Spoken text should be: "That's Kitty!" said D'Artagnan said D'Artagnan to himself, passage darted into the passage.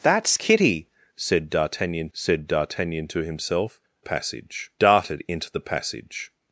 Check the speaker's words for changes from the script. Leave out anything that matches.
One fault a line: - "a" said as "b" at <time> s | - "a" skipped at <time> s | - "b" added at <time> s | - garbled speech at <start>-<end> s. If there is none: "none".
none